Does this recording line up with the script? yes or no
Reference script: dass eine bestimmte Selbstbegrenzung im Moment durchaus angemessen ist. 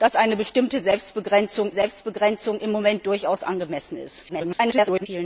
no